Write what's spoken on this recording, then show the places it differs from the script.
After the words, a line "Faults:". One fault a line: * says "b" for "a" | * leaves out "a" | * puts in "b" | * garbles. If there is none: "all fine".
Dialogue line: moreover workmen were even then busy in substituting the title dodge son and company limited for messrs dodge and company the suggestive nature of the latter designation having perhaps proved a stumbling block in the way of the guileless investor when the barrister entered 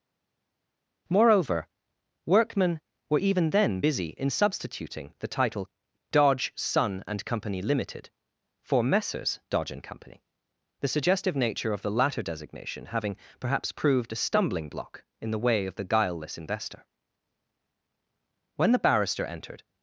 moreover workmen were even then busy in substituting the title dodge son and company limited for messrs dodge and company the suggestive nature of the latter designation having perhaps proved a stumbling block in the way of the guileless investor when the barrister entered
Faults:
all fine